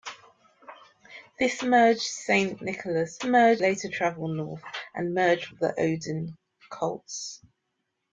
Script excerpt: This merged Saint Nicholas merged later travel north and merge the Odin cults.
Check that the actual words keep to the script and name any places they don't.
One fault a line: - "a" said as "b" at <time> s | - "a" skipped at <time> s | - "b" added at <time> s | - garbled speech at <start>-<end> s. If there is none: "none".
none